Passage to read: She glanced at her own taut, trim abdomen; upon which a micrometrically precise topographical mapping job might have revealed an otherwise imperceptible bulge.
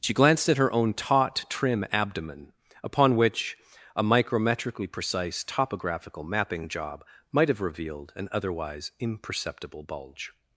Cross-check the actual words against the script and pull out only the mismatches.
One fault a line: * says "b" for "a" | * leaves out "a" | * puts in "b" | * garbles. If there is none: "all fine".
all fine